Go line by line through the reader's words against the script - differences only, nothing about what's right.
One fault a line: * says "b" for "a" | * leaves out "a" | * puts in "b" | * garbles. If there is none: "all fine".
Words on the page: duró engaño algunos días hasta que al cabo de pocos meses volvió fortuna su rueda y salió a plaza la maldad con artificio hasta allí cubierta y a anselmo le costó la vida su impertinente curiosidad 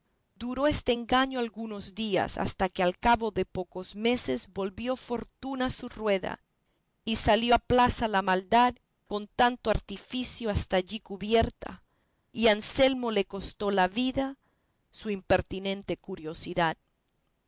* puts in "este"
* puts in "tanto"